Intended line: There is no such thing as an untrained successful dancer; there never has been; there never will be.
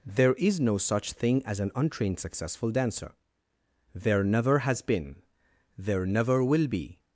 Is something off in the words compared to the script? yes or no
no